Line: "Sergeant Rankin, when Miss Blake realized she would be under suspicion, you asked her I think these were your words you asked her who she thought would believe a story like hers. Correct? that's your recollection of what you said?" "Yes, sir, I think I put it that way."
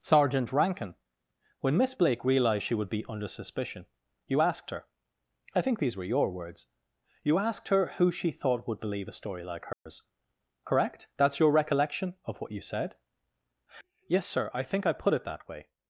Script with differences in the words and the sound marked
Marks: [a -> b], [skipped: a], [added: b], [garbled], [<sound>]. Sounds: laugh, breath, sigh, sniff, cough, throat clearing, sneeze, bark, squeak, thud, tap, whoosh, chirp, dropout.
"Sergeant Rankin, when Miss Blake realized she would be under suspicion, you asked her I think these were your words you asked her who she thought would believe a story like hers. [dropout] Correct? that's your recollection of what you said?" "Yes, sir, I think I put it that way."